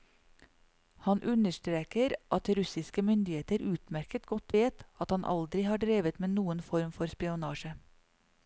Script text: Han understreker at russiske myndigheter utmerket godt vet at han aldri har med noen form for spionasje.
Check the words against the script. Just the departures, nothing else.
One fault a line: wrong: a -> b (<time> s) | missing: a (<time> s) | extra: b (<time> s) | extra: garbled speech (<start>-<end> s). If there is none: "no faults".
extra: drevet (5.9 s)